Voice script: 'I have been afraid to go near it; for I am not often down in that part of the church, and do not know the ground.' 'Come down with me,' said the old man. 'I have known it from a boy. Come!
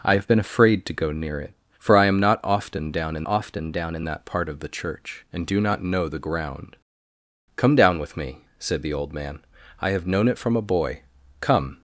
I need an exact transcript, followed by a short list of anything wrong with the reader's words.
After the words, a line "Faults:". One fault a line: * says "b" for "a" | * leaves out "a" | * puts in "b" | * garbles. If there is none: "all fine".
'I have been afraid to go near it; for I am not often down in often down in that part of the church, and do not know the ground.' 'Come down with me,' said the old man. 'I have known it from a boy. Come!
Faults:
* puts in "often down in"